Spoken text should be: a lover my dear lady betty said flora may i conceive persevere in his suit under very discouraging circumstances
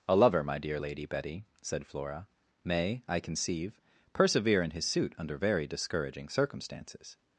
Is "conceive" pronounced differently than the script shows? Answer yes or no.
no